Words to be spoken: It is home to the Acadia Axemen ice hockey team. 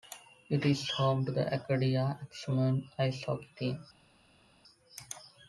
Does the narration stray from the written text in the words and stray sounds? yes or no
no